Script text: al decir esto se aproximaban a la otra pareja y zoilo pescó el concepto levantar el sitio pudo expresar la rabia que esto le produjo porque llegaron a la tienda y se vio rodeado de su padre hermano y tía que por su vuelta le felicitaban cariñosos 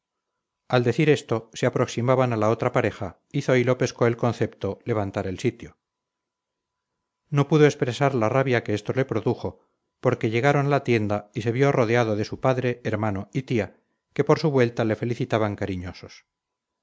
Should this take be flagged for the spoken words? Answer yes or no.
yes